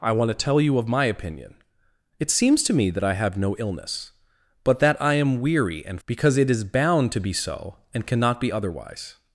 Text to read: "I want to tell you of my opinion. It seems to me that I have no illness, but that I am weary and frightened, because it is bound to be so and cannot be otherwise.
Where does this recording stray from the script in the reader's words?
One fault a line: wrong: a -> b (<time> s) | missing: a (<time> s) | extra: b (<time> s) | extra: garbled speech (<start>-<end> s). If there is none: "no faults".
missing: frightened (6.0 s)